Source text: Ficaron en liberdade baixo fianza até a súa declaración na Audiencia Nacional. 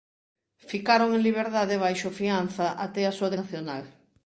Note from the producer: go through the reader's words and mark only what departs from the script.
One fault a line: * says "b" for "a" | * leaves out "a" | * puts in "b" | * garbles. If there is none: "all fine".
* leaves out "declaración na Audiencia"